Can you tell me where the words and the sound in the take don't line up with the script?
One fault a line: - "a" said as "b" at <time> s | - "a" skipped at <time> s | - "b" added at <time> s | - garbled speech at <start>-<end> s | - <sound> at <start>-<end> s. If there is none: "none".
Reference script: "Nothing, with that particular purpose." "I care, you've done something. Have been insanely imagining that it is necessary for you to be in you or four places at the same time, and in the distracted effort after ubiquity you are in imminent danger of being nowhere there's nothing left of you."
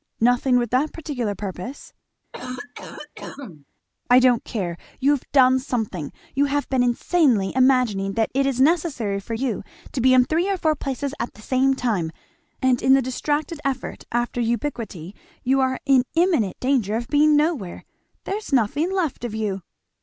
- cough at 2.3-3.7 s
- "don't" added at 4.2 s
- "You" added at 6.3 s
- "you" said as "three" at 10.3 s